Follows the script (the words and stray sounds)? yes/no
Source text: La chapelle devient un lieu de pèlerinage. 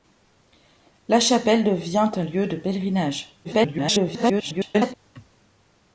no